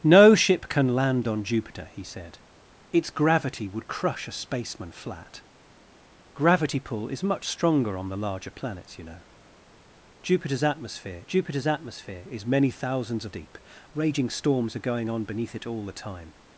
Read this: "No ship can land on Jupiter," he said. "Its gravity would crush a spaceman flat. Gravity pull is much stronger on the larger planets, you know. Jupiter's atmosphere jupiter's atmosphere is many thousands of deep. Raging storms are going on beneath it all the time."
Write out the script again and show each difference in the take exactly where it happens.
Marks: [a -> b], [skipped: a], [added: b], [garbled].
"No ship can land on Jupiter," he said. "Its gravity would crush a spaceman flat. Gravity pull is much stronger on the larger planets, you know. Jupiter's atmosphere jupiter's atmosphere is many thousands of deep. Raging storms are going on beneath it all the time."